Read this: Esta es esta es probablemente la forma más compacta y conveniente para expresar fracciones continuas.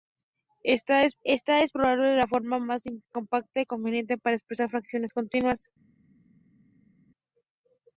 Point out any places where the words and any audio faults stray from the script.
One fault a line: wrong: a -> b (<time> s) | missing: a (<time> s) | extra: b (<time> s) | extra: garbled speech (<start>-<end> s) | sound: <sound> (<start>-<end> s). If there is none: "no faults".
no faults